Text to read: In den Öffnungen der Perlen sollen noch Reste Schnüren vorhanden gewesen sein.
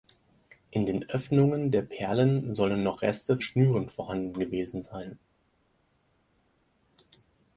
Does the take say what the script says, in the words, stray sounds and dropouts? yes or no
yes